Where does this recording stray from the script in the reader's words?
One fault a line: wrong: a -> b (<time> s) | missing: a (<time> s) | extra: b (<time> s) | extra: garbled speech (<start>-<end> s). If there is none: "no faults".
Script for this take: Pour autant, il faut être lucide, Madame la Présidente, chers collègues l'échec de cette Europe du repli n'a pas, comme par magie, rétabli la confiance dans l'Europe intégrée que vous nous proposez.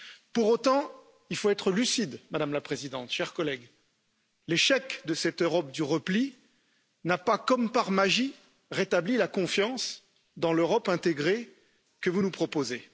no faults